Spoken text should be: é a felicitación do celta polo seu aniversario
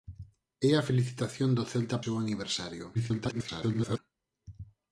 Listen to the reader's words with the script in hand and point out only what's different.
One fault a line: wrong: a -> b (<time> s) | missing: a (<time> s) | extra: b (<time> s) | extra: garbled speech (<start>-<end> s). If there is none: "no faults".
missing: polo (2.0 s)
extra: garbled speech (2.9-4.0 s)